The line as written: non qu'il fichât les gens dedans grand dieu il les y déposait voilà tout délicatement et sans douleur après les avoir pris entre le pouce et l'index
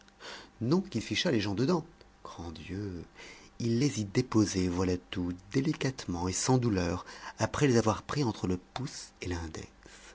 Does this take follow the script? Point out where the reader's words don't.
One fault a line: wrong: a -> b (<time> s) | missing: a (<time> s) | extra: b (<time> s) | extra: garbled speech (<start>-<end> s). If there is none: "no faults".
no faults